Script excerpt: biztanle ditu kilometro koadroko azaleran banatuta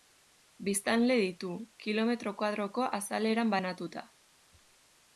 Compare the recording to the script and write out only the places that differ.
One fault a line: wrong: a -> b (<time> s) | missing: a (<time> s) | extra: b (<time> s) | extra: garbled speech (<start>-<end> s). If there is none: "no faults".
no faults